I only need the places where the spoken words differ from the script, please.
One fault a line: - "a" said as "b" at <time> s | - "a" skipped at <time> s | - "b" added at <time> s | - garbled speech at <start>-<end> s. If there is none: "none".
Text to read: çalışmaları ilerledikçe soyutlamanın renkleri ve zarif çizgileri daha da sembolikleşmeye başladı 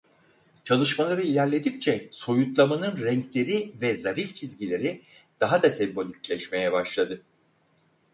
none